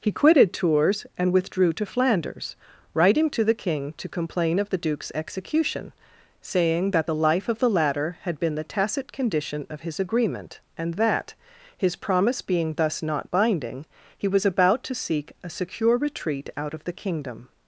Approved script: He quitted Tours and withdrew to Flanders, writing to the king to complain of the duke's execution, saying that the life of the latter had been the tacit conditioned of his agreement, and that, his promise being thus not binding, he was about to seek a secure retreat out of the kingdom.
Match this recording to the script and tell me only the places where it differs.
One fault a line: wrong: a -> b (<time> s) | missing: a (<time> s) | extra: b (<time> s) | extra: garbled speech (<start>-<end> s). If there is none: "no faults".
wrong: conditioned -> condition (9.1 s)